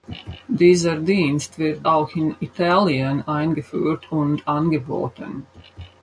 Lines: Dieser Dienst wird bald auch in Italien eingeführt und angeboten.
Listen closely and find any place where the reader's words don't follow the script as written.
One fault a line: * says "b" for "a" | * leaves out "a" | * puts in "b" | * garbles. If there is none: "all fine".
* leaves out "bald"